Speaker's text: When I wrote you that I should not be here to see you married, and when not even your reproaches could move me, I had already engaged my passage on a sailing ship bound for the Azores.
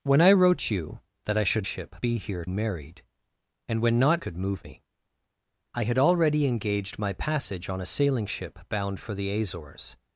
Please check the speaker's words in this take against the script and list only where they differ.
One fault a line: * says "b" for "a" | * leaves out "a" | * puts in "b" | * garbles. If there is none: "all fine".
* says "ship" for "not"
* leaves out "to see you"
* leaves out "even your reproaches"